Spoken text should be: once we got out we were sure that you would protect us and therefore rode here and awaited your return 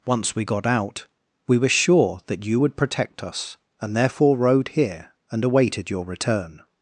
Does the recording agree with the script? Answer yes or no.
yes